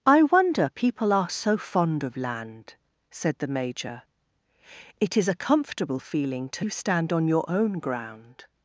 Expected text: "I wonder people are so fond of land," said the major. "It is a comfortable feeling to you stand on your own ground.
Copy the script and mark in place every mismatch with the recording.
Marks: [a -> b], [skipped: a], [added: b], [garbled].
"I wonder people are so fond of land," said the major. "It is a comfortable feeling to you stand on your own ground.